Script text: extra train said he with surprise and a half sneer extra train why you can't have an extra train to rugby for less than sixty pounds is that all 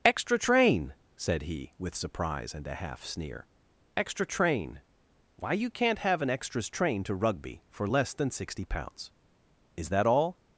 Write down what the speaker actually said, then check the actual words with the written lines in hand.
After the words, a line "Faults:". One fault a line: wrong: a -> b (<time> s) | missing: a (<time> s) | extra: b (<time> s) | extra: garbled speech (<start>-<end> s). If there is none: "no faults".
extra train said he with surprise and a half sneer extra train why you can't have an extras train to rugby for less than sixty pounds is that all
Faults:
wrong: extra -> extras (6.3 s)